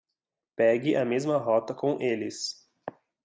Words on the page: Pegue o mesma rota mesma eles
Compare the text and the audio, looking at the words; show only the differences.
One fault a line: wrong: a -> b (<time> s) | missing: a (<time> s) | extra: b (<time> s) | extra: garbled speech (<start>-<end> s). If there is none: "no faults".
wrong: o -> a (0.9 s)
wrong: mesma -> com (1.8 s)